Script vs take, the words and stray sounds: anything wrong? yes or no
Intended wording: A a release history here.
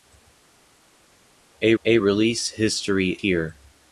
no